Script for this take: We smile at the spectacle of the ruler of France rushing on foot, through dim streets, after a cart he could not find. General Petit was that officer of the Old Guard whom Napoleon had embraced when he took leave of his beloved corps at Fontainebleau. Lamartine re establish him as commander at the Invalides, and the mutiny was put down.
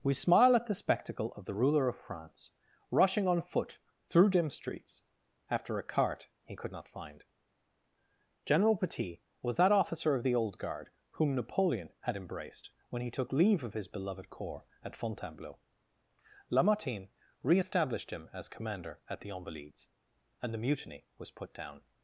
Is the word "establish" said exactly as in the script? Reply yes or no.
no